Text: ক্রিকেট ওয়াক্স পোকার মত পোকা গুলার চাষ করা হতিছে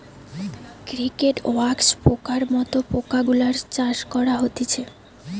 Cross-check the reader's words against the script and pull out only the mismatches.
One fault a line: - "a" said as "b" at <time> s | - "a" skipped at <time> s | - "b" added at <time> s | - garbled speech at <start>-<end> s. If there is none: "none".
none